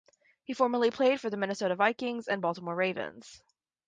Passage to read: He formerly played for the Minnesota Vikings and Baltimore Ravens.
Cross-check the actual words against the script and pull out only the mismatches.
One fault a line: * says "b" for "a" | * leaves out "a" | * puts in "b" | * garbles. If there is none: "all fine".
all fine